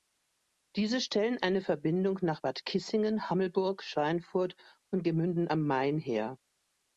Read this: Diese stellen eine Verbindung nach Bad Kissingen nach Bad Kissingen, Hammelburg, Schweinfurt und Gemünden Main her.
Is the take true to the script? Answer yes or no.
no